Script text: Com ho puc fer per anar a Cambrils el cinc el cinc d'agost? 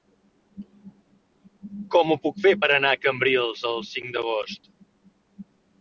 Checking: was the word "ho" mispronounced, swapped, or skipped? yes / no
no